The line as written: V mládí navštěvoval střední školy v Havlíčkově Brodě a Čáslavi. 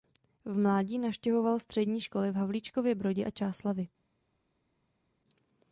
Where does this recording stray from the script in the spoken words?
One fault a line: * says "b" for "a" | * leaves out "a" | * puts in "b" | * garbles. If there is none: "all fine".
all fine